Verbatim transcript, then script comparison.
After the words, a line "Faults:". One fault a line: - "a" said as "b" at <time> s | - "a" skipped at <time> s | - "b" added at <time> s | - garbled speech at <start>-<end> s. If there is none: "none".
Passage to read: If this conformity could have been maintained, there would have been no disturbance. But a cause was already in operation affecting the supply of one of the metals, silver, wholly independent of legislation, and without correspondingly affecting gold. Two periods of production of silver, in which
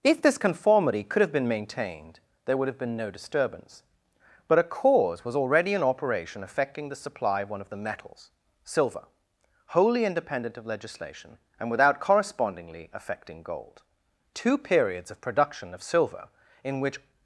If this conformity could have been maintained, there would have been no disturbance. But a cause was already in operation affecting the supply of one of the metals, silver, wholly independent of legislation, and without correspondingly affecting gold. Two periods of production of silver, in which
Faults:
none